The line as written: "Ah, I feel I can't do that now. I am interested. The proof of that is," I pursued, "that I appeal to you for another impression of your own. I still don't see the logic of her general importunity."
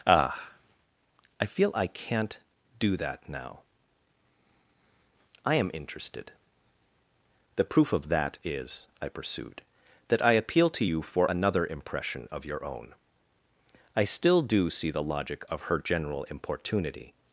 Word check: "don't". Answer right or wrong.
wrong